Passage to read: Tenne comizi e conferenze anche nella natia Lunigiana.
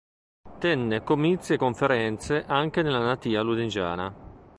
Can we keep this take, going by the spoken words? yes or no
yes